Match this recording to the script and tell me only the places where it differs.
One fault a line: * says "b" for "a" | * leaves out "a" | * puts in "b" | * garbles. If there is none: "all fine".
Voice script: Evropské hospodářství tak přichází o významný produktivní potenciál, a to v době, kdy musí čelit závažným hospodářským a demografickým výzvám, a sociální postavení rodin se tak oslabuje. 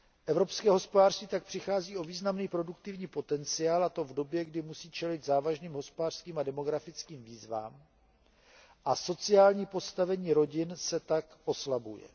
all fine